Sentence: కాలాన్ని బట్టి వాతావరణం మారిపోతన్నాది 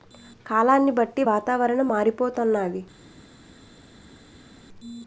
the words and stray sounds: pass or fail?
pass